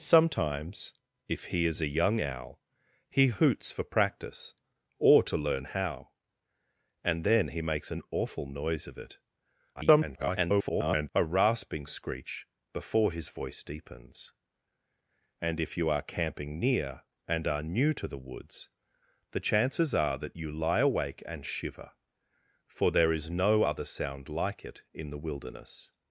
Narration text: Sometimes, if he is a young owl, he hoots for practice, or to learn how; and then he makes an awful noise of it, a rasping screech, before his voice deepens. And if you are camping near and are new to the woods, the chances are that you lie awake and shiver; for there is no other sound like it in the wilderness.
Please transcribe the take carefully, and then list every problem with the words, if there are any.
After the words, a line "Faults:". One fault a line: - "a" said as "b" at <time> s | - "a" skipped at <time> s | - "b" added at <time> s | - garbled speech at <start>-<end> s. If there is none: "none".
Sometimes, if he is a young owl, he hoots for practice, or to learn how; and then he makes an awful noise of it, [garbled] a rasping screech, before his voice deepens. And if you are camping near and are new to the woods, the chances are that you lie awake and shiver; for there is no other sound like it in the wilderness.
Faults:
- garbled speech at 9.8-11.1 s